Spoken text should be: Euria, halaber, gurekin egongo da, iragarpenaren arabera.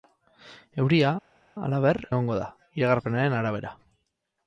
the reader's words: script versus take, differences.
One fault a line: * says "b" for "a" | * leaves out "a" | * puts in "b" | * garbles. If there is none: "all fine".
* leaves out "gurekin"